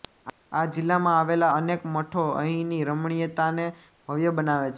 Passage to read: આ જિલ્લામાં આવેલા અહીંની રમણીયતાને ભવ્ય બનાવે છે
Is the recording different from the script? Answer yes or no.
yes